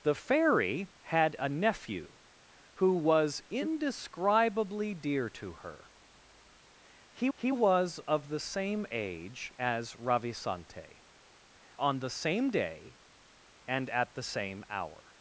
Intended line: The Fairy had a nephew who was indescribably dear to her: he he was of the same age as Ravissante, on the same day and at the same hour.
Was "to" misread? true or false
false